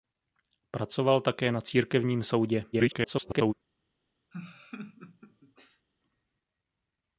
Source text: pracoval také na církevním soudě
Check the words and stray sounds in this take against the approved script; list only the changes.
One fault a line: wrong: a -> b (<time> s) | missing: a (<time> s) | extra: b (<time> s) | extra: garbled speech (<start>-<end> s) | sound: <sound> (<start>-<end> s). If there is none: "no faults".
extra: garbled speech (2.7-3.5 s)
sound: laugh (4.3-5.9 s)